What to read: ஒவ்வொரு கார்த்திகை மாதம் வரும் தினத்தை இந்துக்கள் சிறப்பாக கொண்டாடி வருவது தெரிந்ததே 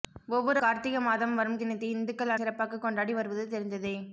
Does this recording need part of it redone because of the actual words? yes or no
no